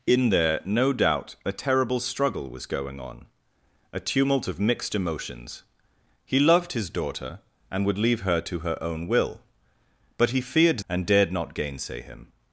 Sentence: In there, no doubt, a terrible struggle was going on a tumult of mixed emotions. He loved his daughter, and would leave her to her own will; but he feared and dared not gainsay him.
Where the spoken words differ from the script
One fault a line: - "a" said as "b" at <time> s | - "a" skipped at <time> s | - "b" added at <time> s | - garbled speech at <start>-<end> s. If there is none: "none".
none